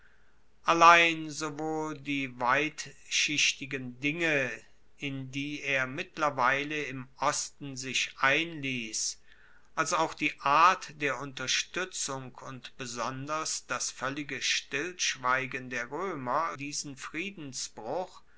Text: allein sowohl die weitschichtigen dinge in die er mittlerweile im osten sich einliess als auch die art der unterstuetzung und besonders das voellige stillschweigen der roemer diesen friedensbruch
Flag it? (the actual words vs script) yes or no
no